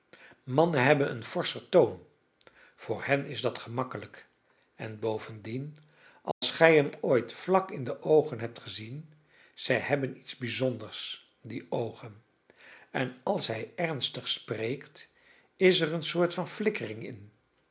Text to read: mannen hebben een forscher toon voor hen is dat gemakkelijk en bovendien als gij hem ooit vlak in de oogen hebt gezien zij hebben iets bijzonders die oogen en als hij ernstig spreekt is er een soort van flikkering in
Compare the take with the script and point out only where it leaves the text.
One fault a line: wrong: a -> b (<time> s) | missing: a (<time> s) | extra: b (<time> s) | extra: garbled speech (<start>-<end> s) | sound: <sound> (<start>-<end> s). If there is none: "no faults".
sound: dropout (6.3-6.4 s)